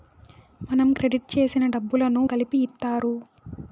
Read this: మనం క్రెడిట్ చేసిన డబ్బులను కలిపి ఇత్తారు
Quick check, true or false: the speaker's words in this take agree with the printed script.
true